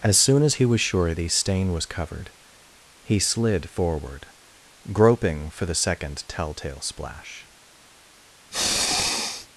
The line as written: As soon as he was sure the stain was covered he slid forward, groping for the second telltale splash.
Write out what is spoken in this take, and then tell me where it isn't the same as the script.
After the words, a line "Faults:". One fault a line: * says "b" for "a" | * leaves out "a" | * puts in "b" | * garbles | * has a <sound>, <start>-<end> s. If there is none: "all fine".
As soon as he was sure the stain was covered he slid forward, groping for the second telltale splash.
Faults:
* has a sniff, 8.5-9.5 s